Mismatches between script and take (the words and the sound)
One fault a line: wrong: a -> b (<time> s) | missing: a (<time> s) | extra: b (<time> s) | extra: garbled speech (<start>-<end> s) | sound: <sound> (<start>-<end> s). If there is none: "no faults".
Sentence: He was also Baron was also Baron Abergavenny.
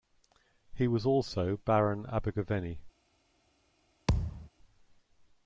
missing: was also Baron (2.1 s)
sound: thud (4.1-4.5 s)